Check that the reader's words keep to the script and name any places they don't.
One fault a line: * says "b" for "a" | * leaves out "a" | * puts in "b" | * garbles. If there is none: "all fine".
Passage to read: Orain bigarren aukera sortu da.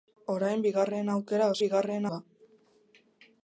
* says "bigarren" for "sortu"